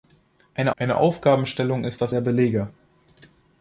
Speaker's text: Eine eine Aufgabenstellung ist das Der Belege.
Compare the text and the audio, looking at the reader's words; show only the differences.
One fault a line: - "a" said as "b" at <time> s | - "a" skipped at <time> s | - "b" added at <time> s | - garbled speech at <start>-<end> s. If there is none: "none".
none